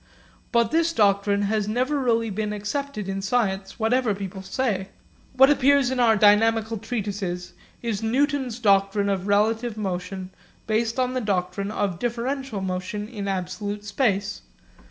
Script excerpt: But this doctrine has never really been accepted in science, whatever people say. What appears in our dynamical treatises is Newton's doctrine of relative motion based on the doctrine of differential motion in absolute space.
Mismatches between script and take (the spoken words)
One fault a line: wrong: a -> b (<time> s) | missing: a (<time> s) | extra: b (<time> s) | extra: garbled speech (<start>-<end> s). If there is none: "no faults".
no faults